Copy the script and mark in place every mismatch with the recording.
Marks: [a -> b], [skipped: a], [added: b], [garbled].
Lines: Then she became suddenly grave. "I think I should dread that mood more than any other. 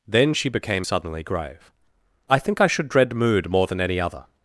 Then she became suddenly grave. "I think I should dread [skipped: that] mood more than any other.